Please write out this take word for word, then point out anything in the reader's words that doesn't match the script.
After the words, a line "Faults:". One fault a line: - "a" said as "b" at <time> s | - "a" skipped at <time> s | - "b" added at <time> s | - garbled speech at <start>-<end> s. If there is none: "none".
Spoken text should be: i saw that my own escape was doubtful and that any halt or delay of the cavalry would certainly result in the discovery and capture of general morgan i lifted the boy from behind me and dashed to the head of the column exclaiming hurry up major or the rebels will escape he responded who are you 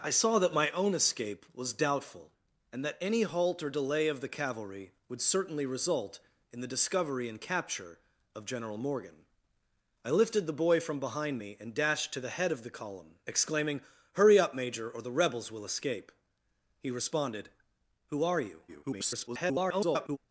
i saw that my own escape was doubtful and that any halt or delay of the cavalry would certainly result in the discovery and capture of general morgan i lifted the boy from behind me and dashed to the head of the column exclaiming hurry up major or the rebels will escape he responded who are you [garbled]
Faults:
- garbled speech at 18.7-20.2 s